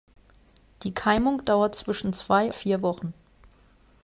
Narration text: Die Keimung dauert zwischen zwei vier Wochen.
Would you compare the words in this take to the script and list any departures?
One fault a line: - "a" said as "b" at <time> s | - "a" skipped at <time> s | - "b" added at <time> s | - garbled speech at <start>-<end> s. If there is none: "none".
none